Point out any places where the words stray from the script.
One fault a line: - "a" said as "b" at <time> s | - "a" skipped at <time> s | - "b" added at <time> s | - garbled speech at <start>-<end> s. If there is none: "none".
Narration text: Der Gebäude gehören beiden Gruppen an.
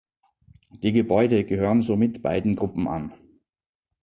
- "Der" said as "Die" at 0.8 s
- "somit" added at 1.8 s